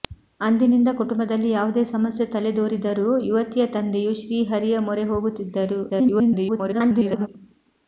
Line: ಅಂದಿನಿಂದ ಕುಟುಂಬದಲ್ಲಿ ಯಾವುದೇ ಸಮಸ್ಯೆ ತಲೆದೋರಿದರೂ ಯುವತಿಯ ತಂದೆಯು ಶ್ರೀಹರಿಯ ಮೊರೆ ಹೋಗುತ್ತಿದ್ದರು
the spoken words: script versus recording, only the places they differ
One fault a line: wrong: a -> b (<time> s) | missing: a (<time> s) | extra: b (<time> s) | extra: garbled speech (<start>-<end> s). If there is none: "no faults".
extra: garbled speech (5.9-7.3 s)